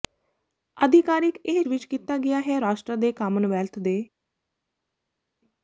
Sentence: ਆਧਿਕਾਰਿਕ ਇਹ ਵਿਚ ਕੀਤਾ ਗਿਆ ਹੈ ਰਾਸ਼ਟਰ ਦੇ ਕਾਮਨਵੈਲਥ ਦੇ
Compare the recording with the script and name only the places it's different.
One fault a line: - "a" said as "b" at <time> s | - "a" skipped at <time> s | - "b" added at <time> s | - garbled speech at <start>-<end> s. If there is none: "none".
none